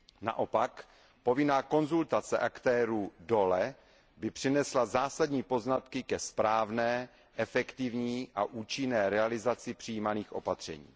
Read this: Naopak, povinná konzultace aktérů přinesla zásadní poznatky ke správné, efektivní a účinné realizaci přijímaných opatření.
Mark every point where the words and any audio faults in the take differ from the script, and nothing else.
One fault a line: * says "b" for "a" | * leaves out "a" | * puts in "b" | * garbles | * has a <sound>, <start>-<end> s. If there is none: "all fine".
* puts in "dole by"